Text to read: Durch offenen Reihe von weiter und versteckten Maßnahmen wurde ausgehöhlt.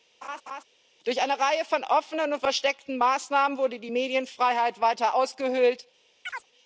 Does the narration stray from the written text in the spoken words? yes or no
yes